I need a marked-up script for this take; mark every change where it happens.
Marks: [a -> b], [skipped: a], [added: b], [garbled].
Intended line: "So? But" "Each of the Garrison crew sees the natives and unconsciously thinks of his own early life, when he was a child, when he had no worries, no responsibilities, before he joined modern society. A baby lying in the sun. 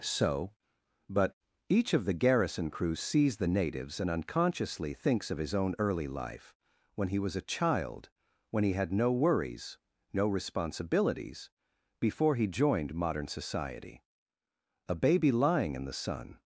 "So? But" "Each of the Garrison crew sees the natives and unconsciously thinks of his own early life, when he was a child, when he had no worries, no responsibilities, before he joined modern society. A baby lying in the sun.